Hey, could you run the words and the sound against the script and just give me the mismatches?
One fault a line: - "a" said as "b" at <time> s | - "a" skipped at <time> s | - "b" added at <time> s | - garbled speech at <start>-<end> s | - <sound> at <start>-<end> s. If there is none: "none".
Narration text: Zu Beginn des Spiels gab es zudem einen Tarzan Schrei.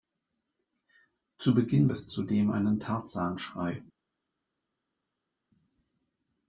- "des Spiels gab" skipped at 1.9 s